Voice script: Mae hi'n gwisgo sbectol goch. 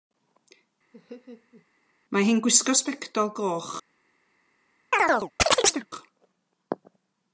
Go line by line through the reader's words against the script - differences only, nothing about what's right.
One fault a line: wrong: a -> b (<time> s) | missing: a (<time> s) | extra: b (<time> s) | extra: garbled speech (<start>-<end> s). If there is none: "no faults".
no faults